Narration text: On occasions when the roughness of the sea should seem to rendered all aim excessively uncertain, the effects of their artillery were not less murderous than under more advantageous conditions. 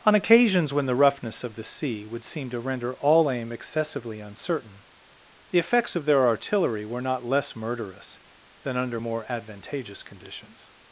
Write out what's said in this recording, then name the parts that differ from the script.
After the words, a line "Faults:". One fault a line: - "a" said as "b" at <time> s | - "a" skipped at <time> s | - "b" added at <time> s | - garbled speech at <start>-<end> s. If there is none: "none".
On occasions when the roughness of the sea would seem to render all aim excessively uncertain, the effects of their artillery were not less murderous than under more advantageous conditions.
Faults:
- "should" said as "would" at 2.1 s
- "rendered" said as "render" at 2.6 s